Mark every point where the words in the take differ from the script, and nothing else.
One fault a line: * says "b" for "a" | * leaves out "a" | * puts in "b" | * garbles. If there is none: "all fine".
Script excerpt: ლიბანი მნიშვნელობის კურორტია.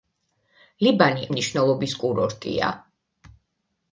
all fine